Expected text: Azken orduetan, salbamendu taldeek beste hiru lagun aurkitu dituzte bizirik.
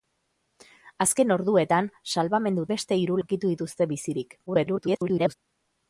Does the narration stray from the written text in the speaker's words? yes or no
yes